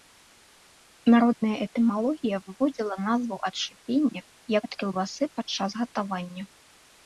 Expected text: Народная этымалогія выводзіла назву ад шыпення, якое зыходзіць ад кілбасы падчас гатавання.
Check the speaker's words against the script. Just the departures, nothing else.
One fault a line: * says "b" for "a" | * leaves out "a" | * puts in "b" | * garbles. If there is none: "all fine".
* leaves out "якое зыходзіць"